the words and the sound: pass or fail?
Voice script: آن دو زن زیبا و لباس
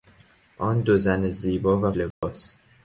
fail